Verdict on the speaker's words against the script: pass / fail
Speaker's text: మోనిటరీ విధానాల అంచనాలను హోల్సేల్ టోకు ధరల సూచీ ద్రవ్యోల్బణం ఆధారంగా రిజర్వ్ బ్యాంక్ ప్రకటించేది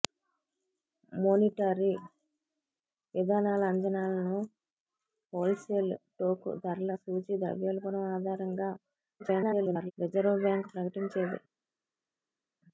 fail